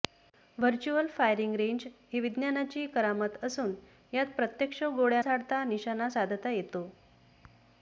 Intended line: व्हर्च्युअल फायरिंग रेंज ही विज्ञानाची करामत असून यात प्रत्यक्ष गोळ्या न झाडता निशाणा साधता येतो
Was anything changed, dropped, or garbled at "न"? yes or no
yes